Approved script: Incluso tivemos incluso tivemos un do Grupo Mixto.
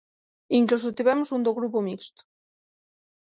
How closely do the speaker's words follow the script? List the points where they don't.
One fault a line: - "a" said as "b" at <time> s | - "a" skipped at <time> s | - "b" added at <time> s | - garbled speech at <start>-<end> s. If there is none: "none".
- "incluso tivemos" skipped at 1.3 s